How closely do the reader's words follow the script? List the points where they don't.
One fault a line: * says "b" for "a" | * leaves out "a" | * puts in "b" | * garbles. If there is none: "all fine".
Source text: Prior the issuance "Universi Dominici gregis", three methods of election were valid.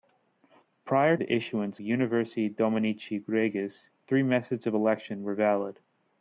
all fine